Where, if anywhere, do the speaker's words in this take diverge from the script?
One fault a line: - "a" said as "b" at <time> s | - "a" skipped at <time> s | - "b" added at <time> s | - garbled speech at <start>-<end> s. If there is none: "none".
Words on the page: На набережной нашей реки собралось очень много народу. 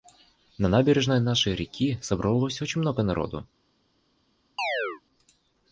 none